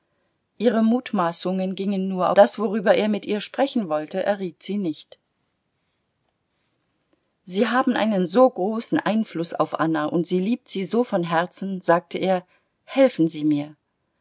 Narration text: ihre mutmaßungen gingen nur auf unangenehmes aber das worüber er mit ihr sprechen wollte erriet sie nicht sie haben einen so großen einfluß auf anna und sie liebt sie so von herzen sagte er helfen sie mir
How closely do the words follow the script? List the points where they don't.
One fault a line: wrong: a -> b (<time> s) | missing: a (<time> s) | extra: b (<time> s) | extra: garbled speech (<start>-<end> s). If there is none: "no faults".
missing: auf unangenehmes aber (2.3 s)